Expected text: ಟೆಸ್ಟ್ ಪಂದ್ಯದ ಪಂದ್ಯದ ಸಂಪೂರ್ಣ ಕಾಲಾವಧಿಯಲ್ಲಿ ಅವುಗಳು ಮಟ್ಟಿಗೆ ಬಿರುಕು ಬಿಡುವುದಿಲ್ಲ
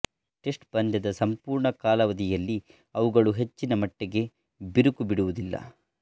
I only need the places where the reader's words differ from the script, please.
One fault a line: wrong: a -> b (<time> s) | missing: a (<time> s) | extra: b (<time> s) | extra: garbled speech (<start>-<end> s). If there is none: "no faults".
missing: ಪಂದ್ಯದ (1.1 s)
extra: ಹೆಚ್ಚಿನ (3.3 s)